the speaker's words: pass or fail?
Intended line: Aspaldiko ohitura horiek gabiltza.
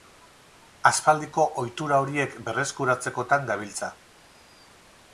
fail